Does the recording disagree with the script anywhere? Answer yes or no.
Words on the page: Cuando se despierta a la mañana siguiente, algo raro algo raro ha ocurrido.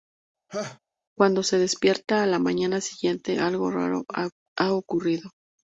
yes